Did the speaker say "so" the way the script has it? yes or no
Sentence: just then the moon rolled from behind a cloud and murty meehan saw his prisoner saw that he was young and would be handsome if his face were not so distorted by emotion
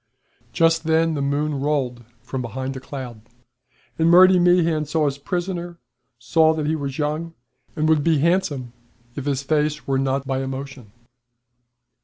no